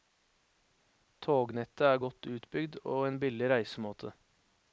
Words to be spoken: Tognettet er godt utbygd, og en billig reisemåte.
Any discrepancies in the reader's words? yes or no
no